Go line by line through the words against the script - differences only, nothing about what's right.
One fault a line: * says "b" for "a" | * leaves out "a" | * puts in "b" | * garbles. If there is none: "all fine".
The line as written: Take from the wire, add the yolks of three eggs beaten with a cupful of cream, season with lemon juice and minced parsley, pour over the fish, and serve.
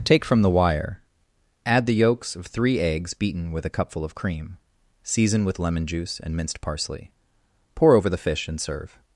all fine